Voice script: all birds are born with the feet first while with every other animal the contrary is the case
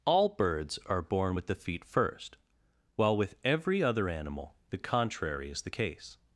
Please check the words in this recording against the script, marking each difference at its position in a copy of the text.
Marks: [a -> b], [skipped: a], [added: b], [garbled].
all birds are born with the feet first while with every other animal the contrary is the case